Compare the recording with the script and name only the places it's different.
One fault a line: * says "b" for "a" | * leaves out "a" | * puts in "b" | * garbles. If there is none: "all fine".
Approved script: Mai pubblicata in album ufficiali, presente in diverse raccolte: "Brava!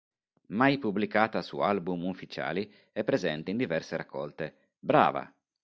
* says "su" for "in"
* puts in "è"